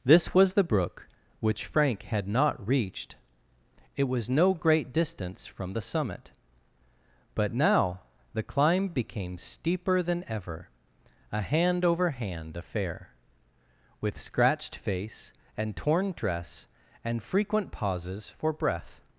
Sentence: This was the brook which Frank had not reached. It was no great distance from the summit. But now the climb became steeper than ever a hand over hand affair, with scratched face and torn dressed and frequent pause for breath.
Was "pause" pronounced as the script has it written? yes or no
no